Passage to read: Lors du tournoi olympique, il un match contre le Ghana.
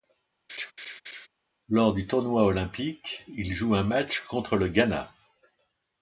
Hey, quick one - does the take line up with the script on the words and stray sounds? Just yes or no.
no